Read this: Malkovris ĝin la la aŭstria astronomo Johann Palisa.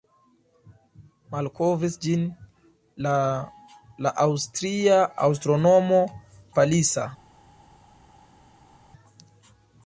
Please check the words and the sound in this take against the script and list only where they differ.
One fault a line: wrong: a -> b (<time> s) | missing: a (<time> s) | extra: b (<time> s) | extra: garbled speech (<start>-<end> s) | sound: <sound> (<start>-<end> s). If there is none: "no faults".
missing: Johann (6.0 s)